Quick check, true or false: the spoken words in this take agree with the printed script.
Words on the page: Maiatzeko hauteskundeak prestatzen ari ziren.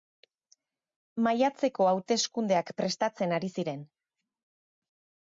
true